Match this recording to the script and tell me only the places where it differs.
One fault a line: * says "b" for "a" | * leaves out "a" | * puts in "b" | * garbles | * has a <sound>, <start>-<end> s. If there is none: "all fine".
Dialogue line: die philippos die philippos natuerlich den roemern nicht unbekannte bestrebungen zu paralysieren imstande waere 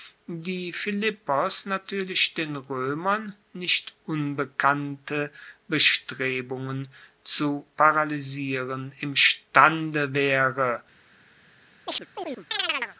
* leaves out "die philippos"
* has a chirp, 11.9-13.0 s